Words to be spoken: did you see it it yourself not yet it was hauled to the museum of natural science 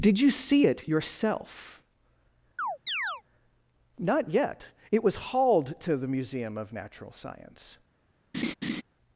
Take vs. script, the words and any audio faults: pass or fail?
fail